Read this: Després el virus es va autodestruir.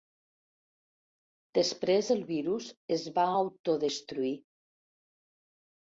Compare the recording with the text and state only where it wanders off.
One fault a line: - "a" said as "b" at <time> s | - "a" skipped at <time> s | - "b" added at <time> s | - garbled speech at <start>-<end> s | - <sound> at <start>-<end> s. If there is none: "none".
none